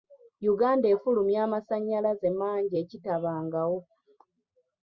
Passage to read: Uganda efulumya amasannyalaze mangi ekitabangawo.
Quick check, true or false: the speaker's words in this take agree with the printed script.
true